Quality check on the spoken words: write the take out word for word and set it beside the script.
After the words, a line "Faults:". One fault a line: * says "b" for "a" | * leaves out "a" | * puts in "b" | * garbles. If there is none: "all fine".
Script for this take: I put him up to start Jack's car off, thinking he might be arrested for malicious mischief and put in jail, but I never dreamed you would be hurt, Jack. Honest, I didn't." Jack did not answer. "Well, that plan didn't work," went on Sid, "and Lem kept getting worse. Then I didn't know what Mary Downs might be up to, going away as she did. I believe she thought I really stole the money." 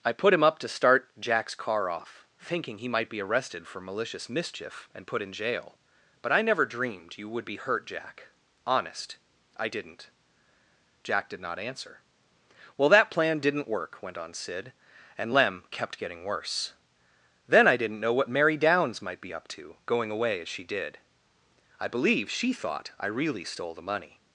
I put him up to start Jack's car off, thinking he might be arrested for malicious mischief and put in jail, but I never dreamed you would be hurt, Jack. Honest, I didn't." Jack did not answer. "Well, that plan didn't work," went on Sid, "and Lem kept getting worse. Then I didn't know what Mary Downs might be up to, going away as she did. I believe she thought I really stole the money."
Faults:
all fine